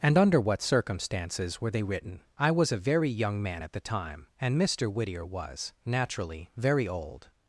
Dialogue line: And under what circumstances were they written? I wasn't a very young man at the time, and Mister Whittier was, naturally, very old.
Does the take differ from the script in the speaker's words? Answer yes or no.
yes